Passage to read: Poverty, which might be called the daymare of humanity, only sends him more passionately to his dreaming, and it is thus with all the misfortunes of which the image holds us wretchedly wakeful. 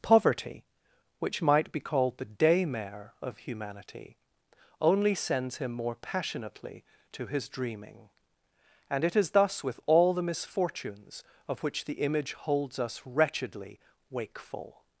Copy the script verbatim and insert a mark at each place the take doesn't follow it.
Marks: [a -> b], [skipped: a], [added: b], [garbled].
Poverty, which might be called the daymare of humanity, only sends him more passionately to his dreaming, and it is thus with all the misfortunes of which the image holds us wretchedly wakeful.